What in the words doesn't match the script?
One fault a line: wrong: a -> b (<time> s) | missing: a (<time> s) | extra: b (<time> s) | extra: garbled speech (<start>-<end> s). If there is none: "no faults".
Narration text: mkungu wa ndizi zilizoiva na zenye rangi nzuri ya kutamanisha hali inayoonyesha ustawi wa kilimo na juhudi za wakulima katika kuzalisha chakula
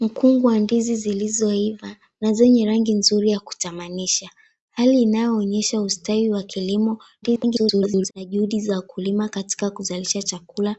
extra: garbled speech (7.2-8.1 s)